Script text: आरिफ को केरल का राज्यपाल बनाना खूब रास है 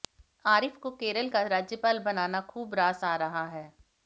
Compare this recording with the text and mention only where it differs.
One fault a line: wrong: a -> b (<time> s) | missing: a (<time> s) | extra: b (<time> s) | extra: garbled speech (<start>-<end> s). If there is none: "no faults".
extra: आ रहा (3.0 s)